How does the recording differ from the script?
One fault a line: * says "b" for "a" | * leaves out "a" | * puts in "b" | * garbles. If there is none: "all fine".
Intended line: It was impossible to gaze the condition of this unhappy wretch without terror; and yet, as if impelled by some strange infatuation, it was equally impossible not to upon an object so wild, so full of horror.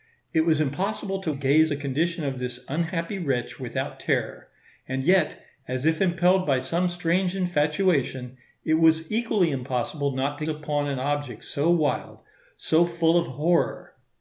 all fine